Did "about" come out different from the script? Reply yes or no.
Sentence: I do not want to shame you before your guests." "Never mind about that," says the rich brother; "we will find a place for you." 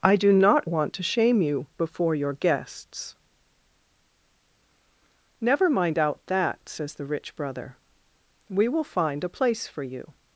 yes